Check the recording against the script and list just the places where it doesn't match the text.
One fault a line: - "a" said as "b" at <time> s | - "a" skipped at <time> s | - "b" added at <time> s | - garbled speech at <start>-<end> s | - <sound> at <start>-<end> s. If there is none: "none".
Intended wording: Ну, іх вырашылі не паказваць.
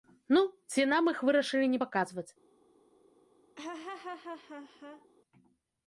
- "ці нам" added at 0.7 s
- laugh at 3.6-5.1 s